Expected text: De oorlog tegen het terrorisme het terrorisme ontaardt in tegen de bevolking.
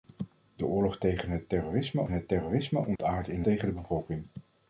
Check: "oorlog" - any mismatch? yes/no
no